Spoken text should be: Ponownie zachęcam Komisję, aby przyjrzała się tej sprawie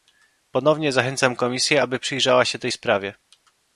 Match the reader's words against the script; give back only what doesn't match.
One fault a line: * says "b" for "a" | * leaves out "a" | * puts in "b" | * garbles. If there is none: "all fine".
all fine